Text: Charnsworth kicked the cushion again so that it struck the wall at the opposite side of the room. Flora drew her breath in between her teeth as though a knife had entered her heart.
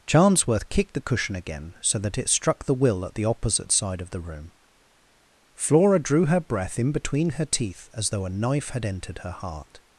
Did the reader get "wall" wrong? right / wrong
wrong